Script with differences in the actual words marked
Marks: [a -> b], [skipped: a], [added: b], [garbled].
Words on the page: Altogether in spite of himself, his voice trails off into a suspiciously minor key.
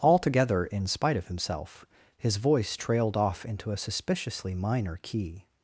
Altogether in spite of himself, his voice [trails -> trailed] off into a suspiciously minor key.